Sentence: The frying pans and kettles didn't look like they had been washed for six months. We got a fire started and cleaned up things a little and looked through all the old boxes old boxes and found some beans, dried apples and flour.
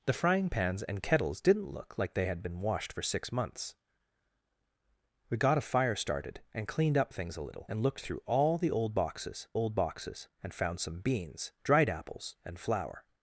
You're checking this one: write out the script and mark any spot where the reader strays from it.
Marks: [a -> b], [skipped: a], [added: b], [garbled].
The frying pans and kettles didn't look like they had been washed for six months. We got a fire started and cleaned up things a little and looked through all the old boxes old boxes and found some beans, dried apples and flour.